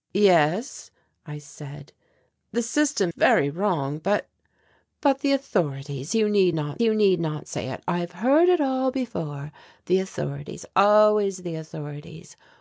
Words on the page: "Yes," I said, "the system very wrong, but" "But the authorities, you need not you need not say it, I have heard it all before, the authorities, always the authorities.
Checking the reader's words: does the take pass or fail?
pass